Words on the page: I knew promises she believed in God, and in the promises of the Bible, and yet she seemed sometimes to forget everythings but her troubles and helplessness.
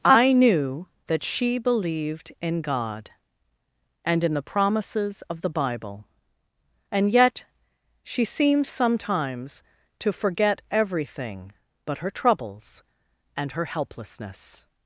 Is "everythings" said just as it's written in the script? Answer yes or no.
no